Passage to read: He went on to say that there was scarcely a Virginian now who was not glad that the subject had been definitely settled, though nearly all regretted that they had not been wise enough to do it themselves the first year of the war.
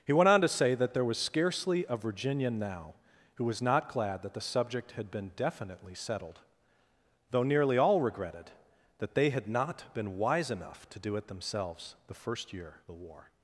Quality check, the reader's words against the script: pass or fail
fail